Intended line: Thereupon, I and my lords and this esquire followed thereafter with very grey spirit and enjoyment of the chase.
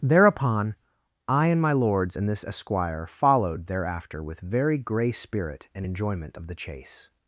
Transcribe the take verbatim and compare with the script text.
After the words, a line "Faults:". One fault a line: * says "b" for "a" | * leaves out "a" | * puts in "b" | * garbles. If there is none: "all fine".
Thereupon, I and my lords and this esquire followed thereafter with very grey spirit and enjoyment of the chase.
Faults:
all fine